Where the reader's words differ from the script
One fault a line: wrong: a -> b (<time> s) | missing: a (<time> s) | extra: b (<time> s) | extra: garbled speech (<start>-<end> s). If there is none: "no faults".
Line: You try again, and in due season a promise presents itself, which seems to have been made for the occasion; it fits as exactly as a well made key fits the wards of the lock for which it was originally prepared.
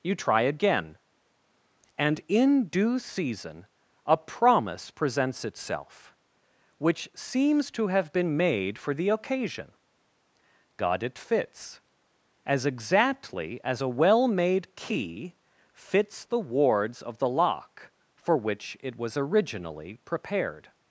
extra: god (10.8 s)